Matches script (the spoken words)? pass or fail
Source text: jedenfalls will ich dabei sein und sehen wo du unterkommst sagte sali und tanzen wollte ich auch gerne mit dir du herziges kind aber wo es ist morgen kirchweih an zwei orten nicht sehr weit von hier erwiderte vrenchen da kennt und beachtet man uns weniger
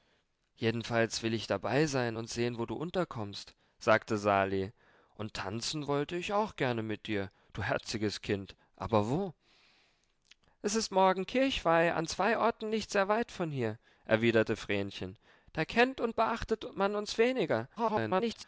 fail